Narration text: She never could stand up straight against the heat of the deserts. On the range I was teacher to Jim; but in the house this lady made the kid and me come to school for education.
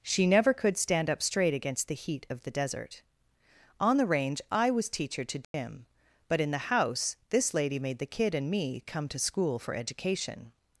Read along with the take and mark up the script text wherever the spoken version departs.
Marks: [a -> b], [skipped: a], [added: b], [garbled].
She never could stand up straight against the heat of the [deserts. -> desert] On the range I was teacher to Jim; but in the house this lady made the kid and me come to school for education.